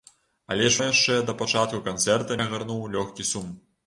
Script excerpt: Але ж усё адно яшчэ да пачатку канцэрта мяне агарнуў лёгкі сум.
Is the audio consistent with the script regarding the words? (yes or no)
no